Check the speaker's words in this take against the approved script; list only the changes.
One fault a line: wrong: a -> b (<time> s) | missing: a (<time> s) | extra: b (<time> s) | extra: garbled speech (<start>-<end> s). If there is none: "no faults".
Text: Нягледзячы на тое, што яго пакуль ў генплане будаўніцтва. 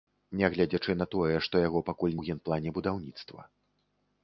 no faults